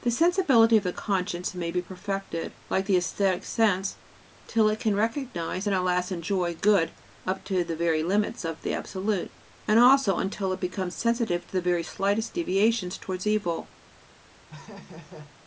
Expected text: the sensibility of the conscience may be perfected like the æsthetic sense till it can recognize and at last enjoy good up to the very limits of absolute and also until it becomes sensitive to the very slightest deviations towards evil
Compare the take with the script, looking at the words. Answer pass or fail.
fail